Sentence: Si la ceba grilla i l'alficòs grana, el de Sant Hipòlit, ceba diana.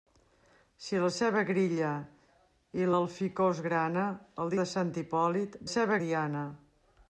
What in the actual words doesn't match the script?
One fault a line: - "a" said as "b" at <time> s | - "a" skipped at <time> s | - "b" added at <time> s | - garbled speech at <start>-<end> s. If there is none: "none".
none